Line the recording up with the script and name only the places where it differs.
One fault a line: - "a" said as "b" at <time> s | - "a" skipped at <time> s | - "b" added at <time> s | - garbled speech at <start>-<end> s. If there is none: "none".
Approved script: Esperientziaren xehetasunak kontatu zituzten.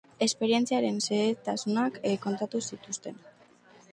none